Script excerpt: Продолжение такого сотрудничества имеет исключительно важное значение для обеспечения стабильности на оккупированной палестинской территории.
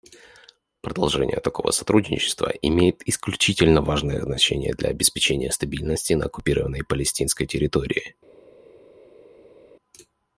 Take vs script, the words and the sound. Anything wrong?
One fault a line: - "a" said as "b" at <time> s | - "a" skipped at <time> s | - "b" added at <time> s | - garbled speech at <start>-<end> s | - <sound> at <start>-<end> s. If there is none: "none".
none